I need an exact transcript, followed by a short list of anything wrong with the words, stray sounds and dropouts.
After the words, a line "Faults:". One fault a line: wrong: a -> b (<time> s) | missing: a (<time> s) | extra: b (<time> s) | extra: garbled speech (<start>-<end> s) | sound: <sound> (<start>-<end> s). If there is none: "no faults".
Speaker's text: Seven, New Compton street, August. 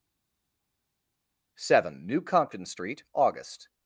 Seven, New Compton street, August.
Faults:
no faults